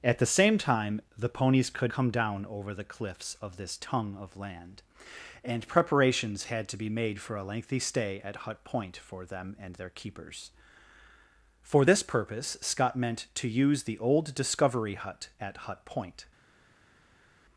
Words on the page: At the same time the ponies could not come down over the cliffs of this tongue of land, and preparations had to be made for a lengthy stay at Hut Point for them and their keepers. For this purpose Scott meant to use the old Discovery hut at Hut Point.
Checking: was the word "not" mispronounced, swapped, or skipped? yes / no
yes